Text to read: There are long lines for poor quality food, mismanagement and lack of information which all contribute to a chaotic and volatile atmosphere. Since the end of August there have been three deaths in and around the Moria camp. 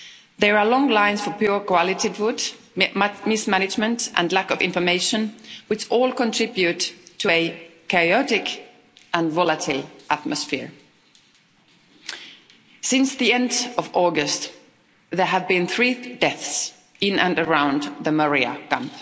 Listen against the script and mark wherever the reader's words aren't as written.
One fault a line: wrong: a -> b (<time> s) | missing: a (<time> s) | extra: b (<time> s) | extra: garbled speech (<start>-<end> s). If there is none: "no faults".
no faults